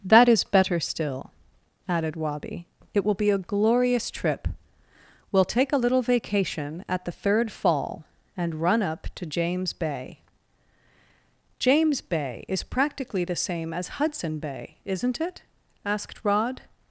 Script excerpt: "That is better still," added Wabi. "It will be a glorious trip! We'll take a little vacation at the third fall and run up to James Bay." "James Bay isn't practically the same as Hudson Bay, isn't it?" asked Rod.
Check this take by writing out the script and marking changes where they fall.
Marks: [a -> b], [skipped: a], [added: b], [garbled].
"That is better still," added Wabi. "It will be a glorious trip! We'll take a little vacation at the third fall and run up to James Bay." "James Bay [isn't -> is] practically the same as Hudson Bay, isn't it?" asked Rod.